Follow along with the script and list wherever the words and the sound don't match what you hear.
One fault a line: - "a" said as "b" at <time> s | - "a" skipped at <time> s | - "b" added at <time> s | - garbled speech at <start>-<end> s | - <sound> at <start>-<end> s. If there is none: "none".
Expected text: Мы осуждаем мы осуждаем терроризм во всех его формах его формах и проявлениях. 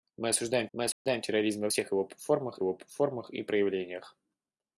- dropout at 0.9-1.1 s